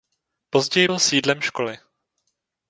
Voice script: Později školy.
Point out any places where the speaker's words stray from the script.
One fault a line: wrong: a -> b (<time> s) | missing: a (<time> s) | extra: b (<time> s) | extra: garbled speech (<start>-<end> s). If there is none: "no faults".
extra: byl sídlem (0.8 s)